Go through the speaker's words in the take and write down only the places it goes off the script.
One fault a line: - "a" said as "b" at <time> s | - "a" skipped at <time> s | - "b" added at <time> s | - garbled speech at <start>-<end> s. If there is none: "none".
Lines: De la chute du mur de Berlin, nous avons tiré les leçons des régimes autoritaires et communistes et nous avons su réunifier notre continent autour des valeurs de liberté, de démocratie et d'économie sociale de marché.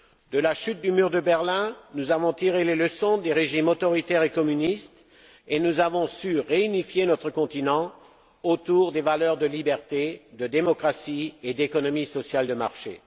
none